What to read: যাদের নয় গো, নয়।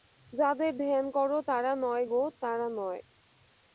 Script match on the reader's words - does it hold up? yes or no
no